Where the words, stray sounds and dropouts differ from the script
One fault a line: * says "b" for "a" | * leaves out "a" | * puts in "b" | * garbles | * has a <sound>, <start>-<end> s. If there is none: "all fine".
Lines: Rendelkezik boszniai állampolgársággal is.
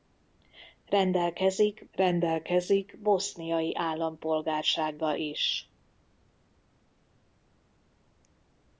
* puts in "rendelkezik"